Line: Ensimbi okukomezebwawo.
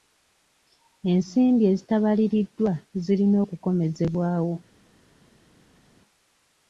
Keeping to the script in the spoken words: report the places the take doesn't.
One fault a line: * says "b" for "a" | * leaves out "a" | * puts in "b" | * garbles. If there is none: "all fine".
* puts in "ezitabaliriddwa zirina"